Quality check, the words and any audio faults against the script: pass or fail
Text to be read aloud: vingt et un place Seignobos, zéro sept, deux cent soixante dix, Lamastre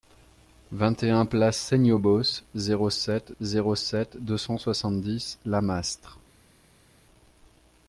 fail